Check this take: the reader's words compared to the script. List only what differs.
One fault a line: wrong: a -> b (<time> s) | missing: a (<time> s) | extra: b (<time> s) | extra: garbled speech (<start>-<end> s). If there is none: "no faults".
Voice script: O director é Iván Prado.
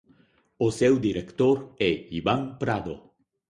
extra: seu (0.8 s)